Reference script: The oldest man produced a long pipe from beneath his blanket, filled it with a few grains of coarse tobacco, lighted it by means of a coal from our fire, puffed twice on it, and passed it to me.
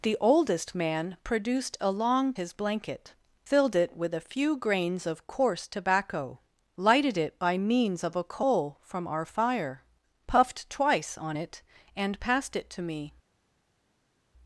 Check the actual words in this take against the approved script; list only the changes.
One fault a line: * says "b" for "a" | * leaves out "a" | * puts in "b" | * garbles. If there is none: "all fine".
* leaves out "pipe from beneath"